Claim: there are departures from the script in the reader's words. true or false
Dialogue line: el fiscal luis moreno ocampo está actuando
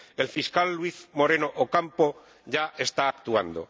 true